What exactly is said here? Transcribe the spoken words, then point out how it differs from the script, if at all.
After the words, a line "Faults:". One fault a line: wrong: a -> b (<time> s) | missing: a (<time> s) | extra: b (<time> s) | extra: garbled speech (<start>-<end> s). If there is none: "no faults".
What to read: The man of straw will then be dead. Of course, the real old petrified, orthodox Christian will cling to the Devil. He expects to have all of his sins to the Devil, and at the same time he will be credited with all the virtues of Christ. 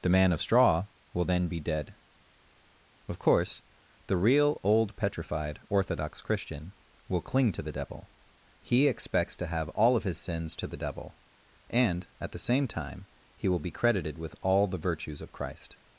The man of straw will then be dead. Of course, the real old petrified, orthodox Christian will cling to the Devil. He expects to have all of his sins to the Devil, and at the same time he will be credited with all the virtues of Christ.
Faults:
no faults